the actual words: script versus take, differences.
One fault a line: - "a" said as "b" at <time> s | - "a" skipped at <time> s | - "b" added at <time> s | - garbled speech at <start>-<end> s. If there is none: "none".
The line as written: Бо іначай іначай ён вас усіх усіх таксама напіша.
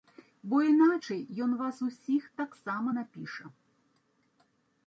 - "іначай" skipped at 1.2 s
- "усіх" skipped at 2.2 s